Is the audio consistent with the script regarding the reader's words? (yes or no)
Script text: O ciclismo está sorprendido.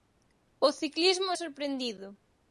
no